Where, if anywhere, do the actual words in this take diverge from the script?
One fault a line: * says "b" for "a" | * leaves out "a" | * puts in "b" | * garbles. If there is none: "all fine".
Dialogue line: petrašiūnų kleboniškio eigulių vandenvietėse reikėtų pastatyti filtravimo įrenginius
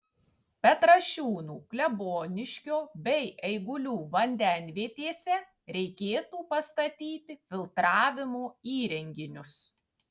* puts in "bei"